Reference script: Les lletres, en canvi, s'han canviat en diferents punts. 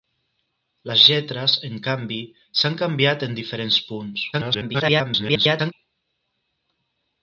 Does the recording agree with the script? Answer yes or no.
no